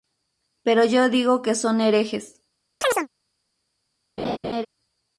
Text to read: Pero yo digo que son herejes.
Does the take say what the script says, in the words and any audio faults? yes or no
no